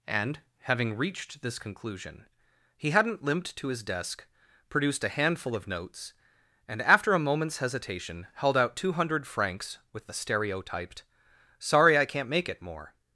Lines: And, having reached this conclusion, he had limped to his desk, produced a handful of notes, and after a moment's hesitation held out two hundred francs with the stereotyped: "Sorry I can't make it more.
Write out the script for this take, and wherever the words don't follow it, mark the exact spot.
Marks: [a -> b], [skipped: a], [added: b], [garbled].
And, having reached this conclusion, he [had -> hadn't] limped to his desk, produced a handful of notes, and after a moment's hesitation held out two hundred francs with the stereotyped: "Sorry I can't make it more.